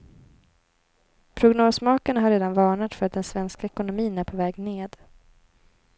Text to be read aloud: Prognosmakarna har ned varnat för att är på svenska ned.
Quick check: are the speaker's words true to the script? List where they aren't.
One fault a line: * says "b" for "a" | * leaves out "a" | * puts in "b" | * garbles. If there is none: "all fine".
* says "redan" for "ned"
* puts in "den svenska ekonomin"
* says "väg" for "svenska"